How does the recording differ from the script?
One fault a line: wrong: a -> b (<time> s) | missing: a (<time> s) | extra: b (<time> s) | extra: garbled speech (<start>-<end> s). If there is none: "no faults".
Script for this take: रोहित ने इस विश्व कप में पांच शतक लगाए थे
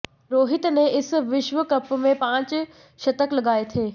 no faults